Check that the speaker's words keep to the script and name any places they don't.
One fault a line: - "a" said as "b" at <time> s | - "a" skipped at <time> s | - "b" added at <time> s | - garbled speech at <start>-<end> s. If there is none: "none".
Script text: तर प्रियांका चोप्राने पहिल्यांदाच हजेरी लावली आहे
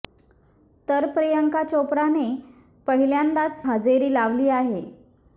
none